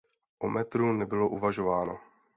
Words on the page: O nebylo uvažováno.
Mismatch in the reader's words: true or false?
true